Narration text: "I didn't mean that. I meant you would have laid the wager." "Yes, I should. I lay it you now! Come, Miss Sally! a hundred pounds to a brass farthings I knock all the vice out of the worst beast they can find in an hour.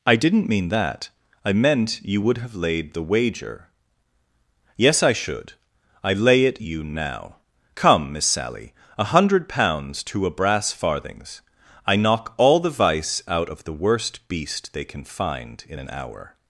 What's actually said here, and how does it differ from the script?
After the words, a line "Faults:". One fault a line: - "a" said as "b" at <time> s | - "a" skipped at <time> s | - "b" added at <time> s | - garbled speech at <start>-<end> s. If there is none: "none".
"I didn't mean that. I meant you would have laid the wager." "Yes, I should. I lay it you now! Come, Miss Sally! a hundred pounds to a brass farthings I knock all the vice out of the worst beast they can find in an hour.
Faults:
none